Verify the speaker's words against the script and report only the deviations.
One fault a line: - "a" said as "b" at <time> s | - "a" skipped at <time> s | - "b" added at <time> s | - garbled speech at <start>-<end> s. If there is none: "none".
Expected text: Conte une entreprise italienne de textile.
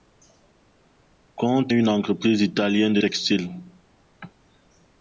none